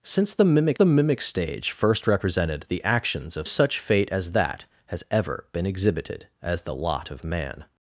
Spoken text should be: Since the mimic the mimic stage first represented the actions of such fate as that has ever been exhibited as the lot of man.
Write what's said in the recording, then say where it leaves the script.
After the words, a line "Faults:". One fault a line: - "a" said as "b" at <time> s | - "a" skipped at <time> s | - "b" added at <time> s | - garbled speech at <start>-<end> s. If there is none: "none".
Since the mimic the mimic stage first represented the actions of such fate as that has ever been exhibited as the lot of man.
Faults:
none